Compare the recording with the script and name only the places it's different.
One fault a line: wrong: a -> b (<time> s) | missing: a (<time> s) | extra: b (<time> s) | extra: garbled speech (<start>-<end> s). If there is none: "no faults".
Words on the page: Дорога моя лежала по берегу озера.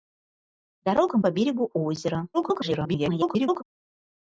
missing: моя лежала (1.2 s)
extra: garbled speech (2.3-3.6 s)